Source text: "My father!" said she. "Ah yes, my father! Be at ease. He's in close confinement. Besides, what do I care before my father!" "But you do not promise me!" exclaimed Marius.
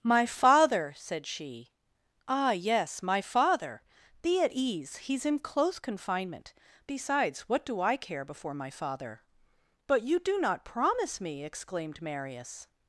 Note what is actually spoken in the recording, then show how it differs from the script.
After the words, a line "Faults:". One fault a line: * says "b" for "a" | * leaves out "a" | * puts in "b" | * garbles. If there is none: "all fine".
"My father!" said she. "Ah yes, my father! Be at ease. He's in close confinement. Besides, what do I care before my father!" "But you do not promise me!" exclaimed Marius.
Faults:
all fine